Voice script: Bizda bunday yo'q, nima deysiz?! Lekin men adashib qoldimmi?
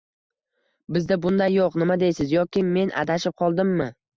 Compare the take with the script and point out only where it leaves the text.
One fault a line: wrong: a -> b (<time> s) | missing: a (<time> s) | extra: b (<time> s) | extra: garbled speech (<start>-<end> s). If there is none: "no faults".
wrong: Lekin -> Yoki (2.4 s)